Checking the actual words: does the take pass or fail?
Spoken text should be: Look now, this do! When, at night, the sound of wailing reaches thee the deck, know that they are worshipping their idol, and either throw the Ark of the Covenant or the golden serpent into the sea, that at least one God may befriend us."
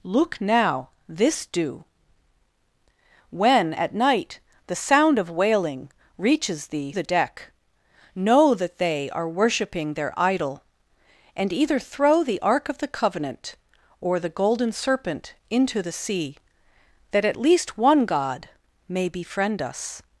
pass